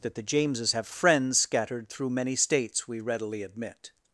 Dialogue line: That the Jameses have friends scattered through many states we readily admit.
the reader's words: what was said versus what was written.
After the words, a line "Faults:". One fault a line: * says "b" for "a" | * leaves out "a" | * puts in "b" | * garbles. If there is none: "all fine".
That the Jameses have friends scattered through many states we readily admit.
Faults:
all fine